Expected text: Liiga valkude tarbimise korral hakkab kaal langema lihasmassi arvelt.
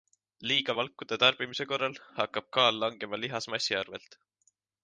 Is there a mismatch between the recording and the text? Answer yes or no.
no